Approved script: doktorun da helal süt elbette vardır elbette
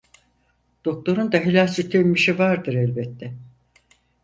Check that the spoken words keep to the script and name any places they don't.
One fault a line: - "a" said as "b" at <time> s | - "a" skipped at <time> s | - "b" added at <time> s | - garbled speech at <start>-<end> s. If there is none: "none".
- "elbette" said as "emmişi" at 1.9 s